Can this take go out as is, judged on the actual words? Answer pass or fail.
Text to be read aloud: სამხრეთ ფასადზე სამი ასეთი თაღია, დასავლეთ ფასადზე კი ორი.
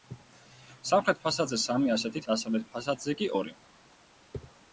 fail